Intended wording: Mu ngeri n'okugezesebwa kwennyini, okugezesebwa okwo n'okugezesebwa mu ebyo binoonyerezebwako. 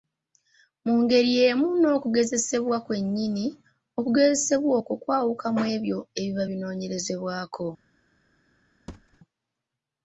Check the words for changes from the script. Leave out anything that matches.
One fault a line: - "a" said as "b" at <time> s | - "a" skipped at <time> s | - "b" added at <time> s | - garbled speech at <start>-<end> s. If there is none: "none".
- "y'emu" added at 1.4 s
- "n'okugezesebwa" said as "kwawuka" at 5.0 s
- "ebiba" added at 6.2 s